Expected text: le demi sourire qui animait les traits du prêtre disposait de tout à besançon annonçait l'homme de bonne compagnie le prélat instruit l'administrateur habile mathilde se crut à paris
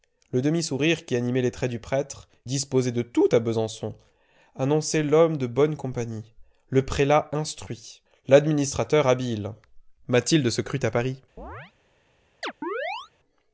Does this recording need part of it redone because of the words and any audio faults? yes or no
yes